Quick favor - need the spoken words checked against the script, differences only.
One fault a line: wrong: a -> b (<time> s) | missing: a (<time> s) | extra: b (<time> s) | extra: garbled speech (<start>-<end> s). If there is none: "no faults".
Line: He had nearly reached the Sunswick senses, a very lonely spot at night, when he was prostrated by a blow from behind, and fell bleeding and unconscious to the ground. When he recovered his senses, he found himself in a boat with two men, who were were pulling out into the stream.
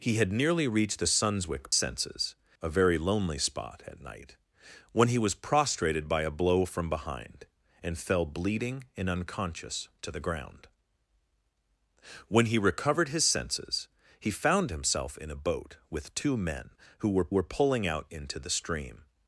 no faults